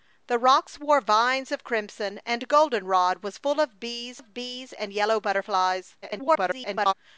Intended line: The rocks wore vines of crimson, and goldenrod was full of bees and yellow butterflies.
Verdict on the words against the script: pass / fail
fail